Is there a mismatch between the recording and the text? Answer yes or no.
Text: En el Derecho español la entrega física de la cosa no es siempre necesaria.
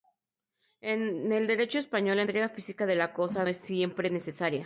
yes